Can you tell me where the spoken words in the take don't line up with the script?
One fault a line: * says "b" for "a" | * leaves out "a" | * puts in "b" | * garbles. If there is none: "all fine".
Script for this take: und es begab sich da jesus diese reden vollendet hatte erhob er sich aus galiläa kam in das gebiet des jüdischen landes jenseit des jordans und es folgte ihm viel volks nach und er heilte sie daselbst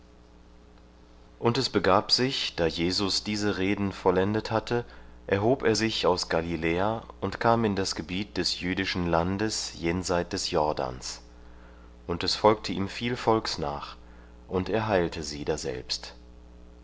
* puts in "und"